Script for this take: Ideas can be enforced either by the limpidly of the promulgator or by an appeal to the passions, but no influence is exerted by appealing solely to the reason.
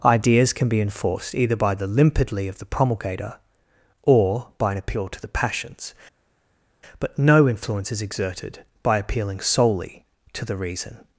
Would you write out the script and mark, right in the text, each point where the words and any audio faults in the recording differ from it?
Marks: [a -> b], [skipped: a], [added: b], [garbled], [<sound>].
Ideas can be enforced either by the limpidly of the promulgator or by an appeal to the passions, but no influence is exerted by appealing solely to the reason.